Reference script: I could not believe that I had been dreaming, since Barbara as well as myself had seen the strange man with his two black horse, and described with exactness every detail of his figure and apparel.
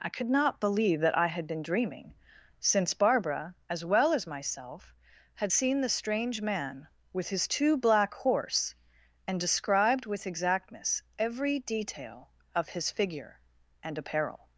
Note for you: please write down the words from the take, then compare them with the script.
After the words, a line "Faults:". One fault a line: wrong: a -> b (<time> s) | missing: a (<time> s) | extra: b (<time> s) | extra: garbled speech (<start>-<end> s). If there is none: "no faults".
I could not believe that I had been dreaming, since Barbara as well as myself had seen the strange man with his two black horse, and described with exactness every detail of his figure and apparel.
Faults:
no faults